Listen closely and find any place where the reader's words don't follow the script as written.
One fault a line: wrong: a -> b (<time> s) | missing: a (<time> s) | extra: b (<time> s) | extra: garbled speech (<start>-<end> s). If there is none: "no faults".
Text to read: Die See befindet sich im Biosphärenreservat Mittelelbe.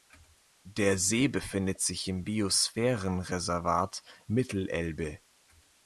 wrong: Die -> Der (0.6 s)